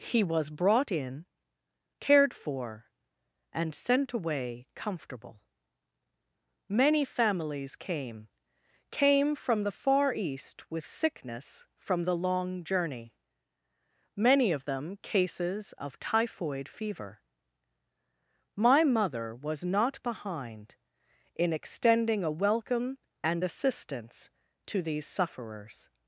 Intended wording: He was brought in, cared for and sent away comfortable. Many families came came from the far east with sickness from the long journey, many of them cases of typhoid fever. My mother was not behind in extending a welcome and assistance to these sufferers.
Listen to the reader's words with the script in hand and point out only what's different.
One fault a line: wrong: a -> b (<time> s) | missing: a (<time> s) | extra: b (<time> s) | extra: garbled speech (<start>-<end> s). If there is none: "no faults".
no faults